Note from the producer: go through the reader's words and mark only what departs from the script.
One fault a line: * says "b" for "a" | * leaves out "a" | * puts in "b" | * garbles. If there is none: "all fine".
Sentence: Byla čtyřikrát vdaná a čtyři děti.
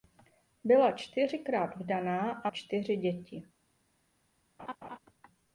all fine